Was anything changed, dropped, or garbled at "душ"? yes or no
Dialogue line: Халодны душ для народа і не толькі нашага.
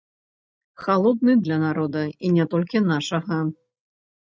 yes